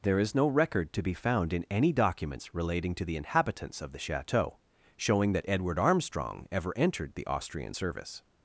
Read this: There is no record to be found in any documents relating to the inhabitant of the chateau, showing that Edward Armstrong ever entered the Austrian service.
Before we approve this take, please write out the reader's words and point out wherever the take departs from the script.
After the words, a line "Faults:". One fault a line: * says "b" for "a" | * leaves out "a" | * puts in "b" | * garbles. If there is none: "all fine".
There is no record to be found in any documents relating to the inhabitants of the chateau, showing that Edward Armstrong ever entered the Austrian service.
Faults:
* says "inhabitants" for "inhabitant"